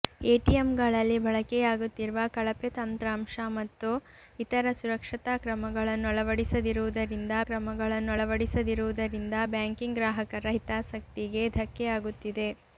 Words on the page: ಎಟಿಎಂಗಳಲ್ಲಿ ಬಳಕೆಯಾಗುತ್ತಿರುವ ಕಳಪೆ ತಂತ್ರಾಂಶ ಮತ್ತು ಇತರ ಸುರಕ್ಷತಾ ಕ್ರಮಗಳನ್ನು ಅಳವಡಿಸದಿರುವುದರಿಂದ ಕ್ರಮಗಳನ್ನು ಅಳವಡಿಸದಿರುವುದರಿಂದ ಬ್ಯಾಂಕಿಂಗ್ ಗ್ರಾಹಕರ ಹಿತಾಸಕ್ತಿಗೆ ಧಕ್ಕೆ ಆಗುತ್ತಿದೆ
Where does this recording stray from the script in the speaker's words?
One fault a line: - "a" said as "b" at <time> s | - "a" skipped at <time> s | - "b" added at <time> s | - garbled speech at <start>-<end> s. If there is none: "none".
none